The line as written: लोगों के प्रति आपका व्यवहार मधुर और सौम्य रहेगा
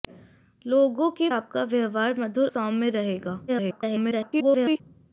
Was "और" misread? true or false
true